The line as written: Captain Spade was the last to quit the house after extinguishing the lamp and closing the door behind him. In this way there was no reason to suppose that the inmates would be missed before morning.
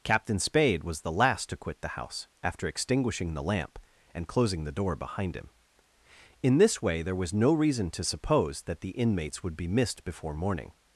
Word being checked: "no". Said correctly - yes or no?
yes